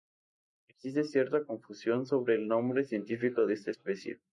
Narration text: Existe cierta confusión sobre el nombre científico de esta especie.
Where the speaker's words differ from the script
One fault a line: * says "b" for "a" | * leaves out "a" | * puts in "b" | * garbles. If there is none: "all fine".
all fine